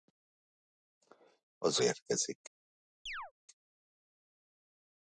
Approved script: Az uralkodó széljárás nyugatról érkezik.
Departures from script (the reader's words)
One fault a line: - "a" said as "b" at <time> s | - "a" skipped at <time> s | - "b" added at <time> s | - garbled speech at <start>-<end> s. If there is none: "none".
- "uralkodó széljárás nyugatról" skipped at 1.8 s